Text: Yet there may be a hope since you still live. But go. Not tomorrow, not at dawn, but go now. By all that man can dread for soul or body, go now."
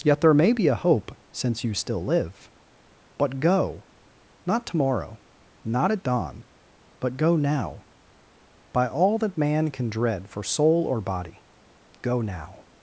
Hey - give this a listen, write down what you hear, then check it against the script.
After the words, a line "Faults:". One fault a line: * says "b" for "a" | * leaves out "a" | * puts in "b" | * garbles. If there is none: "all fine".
Yet there may be a hope since you still live. But go. Not tomorrow, not at dawn, but go now. By all that man can dread for soul or body, go now."
Faults:
all fine